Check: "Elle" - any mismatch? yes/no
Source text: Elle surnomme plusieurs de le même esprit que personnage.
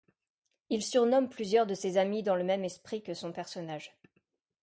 yes